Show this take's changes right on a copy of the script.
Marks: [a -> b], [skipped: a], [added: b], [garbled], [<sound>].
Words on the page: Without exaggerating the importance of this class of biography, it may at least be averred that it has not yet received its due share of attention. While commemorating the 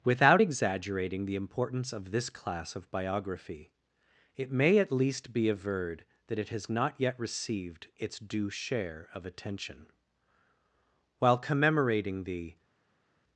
Without exaggerating the importance of this class of biography, it may at least be averred that it has not yet received its due share of attention. While commemorating the